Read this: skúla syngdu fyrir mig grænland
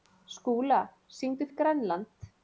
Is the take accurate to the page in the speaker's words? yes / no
no